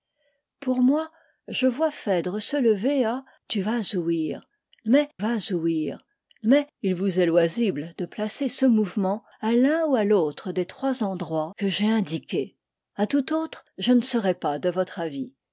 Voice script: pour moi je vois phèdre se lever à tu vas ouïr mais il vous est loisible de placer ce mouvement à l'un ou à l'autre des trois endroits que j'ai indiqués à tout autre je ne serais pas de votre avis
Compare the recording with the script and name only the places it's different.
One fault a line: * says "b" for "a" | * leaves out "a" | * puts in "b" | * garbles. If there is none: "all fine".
* puts in "vas ouïr mais"